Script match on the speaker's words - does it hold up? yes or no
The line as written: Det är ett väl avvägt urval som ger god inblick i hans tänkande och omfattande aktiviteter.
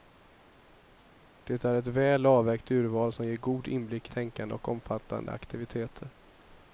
no